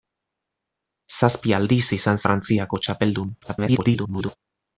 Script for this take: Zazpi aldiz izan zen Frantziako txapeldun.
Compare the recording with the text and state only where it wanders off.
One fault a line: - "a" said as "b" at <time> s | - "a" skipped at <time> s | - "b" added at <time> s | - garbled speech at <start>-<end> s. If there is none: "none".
- "zen" skipped at 2.2 s
- garbled speech at 3.4-4.4 s